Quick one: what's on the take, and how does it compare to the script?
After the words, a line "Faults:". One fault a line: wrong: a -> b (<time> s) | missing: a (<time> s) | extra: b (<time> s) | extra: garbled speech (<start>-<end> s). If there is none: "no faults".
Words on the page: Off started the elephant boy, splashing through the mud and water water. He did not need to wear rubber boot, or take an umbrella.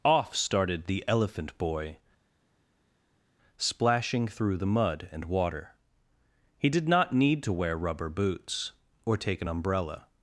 Off started the elephant boy, splashing through the mud and water. He did not need to wear rubber boots, or take an umbrella.
Faults:
missing: water (5.8 s)
wrong: boot -> boots (8.1 s)